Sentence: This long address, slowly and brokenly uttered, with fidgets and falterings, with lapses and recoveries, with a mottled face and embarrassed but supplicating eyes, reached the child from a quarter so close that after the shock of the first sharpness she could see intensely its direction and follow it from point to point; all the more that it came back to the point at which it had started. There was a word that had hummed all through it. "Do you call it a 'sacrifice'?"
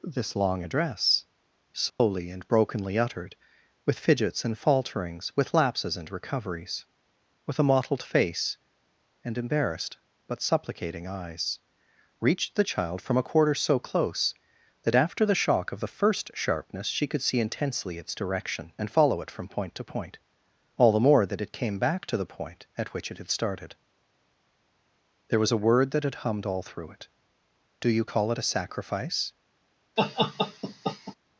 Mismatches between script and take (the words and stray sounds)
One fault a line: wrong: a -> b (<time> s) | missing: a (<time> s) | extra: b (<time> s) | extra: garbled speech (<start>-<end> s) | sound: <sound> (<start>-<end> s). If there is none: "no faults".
sound: dropout (1.9-2.0 s)
sound: laugh (30.0-31.1 s)